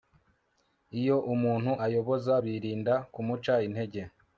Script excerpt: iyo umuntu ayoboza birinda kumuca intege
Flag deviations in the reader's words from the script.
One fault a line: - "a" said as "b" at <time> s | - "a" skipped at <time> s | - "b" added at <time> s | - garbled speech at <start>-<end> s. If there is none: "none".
none